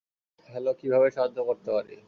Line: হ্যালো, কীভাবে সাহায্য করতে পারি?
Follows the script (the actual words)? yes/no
yes